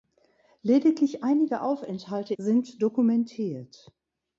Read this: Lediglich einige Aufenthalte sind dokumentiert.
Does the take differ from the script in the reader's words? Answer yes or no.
no